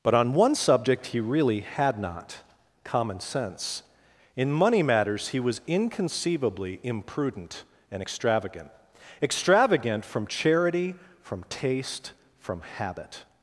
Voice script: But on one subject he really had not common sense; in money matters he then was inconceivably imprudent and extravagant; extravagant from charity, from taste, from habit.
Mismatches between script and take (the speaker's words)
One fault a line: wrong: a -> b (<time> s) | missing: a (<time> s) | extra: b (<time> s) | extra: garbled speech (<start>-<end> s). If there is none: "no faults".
missing: then (5.4 s)